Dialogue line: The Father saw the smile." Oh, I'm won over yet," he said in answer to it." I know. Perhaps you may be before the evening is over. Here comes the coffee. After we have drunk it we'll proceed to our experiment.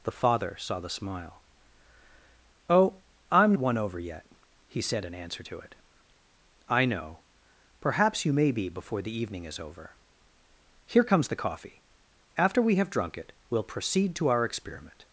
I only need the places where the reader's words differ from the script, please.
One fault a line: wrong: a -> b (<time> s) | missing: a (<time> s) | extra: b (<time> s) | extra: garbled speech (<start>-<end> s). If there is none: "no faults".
no faults